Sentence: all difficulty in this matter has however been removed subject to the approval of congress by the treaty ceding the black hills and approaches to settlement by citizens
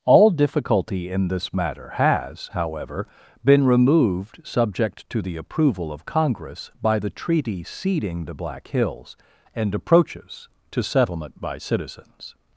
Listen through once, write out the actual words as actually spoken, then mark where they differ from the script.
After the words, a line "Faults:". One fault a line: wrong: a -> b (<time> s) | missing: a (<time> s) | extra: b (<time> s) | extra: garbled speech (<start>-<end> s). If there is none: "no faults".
all difficulty in this matter has however been removed subject to the approval of congress by the treaty ceding the black hills and approaches to settlement by citizens
Faults:
no faults